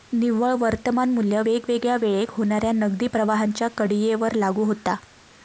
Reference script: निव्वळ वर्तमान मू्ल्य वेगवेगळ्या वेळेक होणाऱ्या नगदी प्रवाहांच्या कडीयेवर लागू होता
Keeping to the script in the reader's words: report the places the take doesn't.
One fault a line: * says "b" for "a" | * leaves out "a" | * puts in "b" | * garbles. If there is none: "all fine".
all fine